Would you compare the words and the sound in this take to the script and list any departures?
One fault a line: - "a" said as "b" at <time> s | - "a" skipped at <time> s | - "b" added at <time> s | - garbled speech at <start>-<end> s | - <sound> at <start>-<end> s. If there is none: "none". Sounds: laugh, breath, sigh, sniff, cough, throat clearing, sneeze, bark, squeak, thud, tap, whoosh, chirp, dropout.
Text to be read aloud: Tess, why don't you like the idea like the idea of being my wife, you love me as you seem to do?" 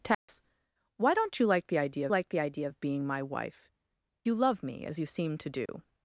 - dropout at 0.1-0.3 s
- dropout at 5.7-5.7 s